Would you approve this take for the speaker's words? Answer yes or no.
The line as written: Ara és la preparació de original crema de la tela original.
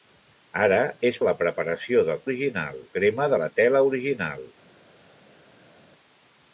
yes